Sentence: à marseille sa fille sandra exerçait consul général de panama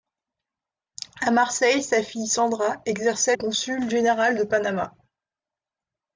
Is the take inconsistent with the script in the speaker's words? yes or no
no